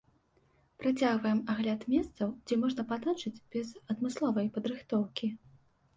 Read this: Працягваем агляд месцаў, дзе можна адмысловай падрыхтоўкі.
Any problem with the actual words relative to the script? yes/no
yes